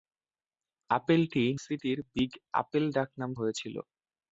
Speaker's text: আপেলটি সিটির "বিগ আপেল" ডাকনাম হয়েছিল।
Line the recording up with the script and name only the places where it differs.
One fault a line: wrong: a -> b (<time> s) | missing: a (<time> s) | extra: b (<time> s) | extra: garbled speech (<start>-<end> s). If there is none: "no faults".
no faults